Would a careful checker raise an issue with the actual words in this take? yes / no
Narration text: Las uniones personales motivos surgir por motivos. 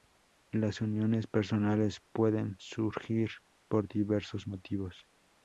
yes